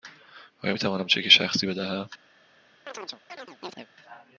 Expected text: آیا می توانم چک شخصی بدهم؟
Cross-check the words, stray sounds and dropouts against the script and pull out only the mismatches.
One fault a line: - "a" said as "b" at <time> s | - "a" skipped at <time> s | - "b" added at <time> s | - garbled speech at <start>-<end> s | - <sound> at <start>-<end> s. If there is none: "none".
- chirp at 2.9-3.9 s